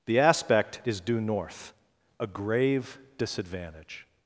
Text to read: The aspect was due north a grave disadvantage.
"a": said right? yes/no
yes